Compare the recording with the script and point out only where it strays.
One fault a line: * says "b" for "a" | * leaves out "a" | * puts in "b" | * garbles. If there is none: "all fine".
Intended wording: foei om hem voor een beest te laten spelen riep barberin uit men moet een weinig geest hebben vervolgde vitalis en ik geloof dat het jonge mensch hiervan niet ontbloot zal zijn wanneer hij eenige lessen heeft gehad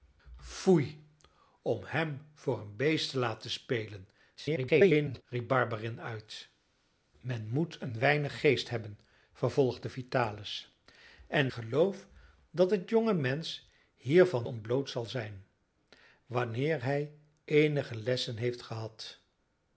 * garbles
* leaves out "ik"
* leaves out "niet"